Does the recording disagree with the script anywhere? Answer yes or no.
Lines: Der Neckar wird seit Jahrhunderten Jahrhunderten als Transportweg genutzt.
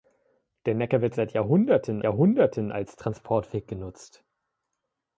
no